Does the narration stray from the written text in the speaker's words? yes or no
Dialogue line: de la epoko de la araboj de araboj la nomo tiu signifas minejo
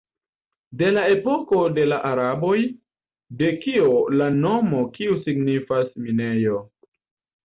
yes